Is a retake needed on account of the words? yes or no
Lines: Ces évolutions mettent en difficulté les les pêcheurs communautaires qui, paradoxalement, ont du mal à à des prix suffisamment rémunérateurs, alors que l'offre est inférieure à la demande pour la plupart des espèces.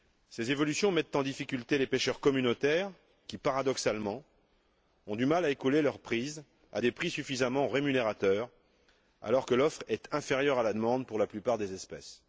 yes